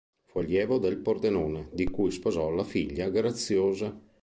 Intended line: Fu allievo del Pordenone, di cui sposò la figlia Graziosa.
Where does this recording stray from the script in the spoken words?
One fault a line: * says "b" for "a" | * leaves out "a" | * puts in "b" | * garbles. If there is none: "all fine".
all fine